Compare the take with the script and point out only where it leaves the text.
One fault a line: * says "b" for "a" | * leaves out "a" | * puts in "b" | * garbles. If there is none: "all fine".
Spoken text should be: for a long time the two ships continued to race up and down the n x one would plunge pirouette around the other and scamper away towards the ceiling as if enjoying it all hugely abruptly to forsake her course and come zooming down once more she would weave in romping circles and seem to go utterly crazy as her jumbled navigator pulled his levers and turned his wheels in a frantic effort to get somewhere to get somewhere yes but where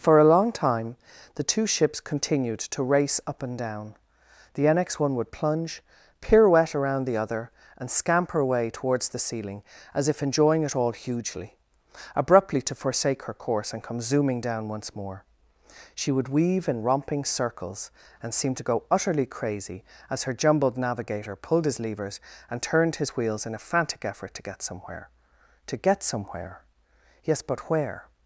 all fine